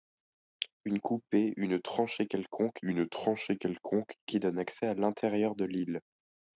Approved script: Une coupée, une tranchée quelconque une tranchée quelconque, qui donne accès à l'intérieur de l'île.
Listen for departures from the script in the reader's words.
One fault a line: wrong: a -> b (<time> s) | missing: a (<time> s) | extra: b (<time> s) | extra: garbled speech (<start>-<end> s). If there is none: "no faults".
no faults